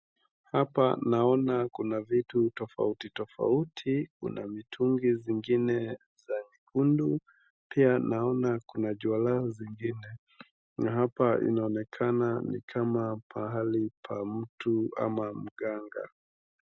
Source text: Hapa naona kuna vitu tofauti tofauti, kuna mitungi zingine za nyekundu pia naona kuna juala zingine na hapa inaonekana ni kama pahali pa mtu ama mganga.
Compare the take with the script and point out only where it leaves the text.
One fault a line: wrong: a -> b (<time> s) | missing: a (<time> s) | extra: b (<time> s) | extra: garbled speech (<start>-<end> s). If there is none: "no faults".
no faults